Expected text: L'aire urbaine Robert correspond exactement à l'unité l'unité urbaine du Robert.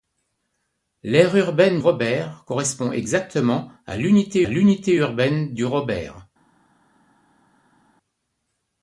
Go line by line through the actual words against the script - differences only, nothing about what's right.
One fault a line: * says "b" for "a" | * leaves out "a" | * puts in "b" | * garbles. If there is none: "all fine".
all fine